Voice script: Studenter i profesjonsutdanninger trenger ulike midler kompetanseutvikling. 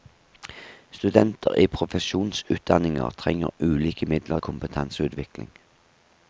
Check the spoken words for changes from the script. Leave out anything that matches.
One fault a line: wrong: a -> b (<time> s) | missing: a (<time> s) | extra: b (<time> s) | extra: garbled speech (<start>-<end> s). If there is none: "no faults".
no faults